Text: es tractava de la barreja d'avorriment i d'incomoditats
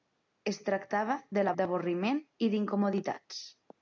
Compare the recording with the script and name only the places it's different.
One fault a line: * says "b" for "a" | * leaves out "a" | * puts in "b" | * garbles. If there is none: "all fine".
* leaves out "barreja"